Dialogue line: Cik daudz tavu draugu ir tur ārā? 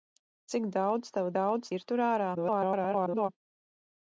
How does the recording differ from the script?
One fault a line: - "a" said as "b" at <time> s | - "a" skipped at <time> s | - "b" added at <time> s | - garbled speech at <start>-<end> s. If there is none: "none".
- "draugu" said as "daudz" at 1.4 s
- garbled speech at 2.3-3.3 s